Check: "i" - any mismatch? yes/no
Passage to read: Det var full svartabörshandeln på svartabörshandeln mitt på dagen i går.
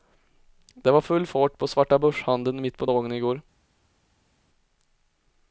no